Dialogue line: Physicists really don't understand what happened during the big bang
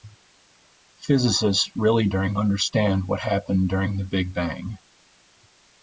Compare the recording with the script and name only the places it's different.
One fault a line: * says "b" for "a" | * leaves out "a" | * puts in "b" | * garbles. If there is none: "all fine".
* says "during" for "don't"